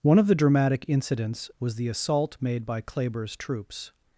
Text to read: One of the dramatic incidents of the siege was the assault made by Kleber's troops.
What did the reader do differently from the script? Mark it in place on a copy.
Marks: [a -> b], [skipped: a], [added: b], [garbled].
One of the dramatic incidents [skipped: of the siege] was the assault made by Kleber's troops.